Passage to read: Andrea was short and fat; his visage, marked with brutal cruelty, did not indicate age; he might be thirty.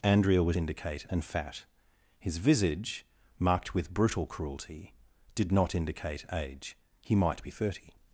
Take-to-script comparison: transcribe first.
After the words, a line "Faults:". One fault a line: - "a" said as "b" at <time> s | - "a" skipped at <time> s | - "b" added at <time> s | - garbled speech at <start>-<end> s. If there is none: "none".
Andrea was indicate and fat; his visage, marked with brutal cruelty, did not indicate age; he might be thirty.
Faults:
- "short" said as "indicate" at 0.5 s